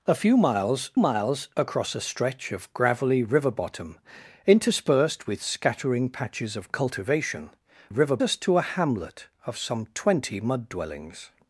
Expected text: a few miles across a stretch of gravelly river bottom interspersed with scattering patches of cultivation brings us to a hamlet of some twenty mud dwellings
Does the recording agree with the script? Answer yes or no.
no